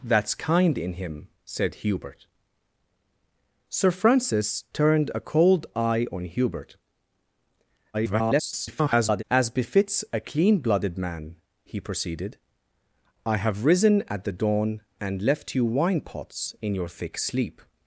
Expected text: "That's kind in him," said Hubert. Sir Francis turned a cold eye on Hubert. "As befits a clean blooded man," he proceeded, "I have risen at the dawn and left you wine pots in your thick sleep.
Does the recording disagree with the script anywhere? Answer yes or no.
yes